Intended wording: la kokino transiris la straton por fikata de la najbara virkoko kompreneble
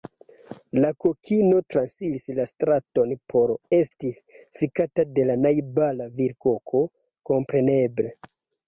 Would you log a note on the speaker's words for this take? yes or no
yes